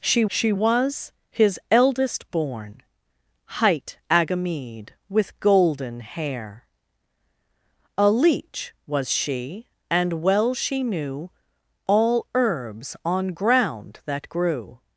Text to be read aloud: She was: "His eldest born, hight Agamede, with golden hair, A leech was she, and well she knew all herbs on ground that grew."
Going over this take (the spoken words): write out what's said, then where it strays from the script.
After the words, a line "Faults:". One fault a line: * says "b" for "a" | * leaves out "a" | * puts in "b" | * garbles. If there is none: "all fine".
She she was: "His eldest born, hight Agamede, with golden hair, A leech was she, and well she knew all herbs on ground that grew."
Faults:
* puts in "she"